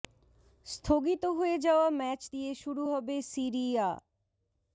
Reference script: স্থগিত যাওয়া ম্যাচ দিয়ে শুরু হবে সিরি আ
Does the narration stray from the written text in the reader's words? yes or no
yes